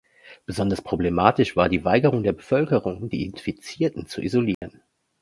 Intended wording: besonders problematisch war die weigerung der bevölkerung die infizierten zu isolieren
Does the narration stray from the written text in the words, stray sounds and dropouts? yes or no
yes